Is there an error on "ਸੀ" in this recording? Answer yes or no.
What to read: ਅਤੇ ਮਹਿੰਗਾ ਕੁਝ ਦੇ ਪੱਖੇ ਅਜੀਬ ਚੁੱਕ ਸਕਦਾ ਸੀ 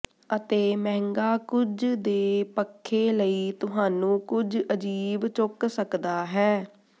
yes